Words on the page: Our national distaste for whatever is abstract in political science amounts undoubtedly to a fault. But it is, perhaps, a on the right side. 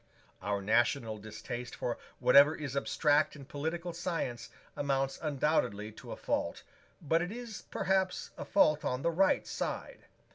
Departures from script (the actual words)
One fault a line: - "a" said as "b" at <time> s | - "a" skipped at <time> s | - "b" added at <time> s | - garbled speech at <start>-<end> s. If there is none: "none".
- "fault" added at 8.4 s